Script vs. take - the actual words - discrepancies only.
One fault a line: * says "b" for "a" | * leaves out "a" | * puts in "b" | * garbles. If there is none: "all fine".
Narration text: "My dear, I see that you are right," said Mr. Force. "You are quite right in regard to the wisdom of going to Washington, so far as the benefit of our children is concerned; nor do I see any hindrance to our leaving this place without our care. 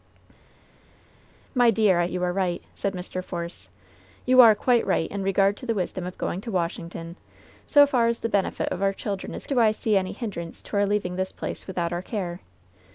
* leaves out "see that"
* leaves out "concerned nor"